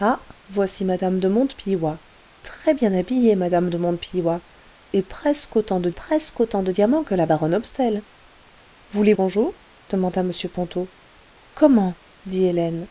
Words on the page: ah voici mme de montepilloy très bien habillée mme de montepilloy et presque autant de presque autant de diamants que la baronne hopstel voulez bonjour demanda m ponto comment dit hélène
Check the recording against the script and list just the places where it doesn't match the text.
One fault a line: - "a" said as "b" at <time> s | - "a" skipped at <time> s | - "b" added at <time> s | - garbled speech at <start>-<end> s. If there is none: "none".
none